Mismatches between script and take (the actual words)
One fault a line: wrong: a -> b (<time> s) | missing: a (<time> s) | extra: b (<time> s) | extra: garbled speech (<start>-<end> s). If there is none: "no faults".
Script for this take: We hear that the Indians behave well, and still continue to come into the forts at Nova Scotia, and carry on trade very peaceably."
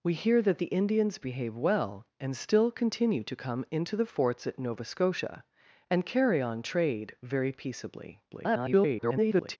extra: garbled speech (8.3-9.6 s)